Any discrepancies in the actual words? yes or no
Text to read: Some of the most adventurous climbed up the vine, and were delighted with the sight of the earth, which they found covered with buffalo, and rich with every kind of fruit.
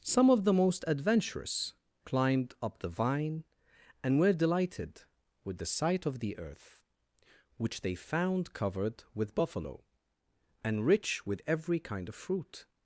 no